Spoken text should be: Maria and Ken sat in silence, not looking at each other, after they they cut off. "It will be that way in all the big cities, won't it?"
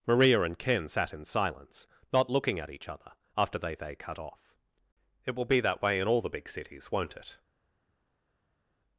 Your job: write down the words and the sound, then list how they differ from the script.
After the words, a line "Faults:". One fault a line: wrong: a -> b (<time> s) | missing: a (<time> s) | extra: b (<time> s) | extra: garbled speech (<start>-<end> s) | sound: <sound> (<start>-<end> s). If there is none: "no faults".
Maria and Ken sat in silence, not looking at each other, after they they cut off. "It will be that way in all the big cities, won't it?"
Faults:
no faults